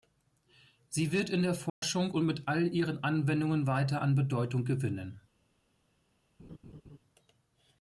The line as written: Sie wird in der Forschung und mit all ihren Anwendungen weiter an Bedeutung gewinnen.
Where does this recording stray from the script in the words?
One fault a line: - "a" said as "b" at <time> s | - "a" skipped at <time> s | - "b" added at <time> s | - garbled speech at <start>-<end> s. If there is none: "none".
none